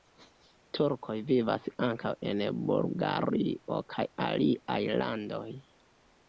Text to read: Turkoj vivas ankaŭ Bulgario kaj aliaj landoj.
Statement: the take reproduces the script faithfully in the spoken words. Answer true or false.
false